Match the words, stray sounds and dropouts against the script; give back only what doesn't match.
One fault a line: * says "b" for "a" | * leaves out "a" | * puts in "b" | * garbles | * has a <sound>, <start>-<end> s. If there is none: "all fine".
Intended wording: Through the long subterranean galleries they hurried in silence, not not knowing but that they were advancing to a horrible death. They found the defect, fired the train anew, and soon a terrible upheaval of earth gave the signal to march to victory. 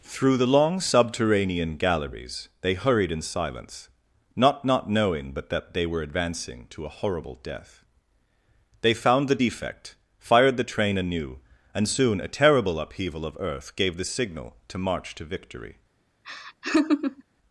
* has a laugh, 16.2-17.2 s